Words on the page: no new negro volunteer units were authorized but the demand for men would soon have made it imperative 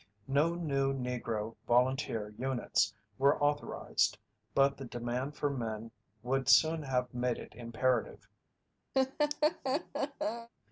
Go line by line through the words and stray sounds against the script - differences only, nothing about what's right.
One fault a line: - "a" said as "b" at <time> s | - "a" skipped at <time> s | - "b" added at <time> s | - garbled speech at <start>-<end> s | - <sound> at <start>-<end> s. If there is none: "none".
- laugh at 8.9-10.5 s